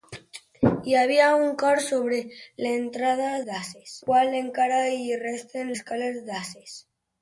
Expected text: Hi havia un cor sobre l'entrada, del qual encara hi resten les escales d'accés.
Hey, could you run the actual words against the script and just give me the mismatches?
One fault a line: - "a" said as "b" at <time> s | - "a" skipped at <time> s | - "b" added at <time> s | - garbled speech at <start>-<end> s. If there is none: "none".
- "del" said as "d'accés" at 3.5 s
- "les" skipped at 5.7 s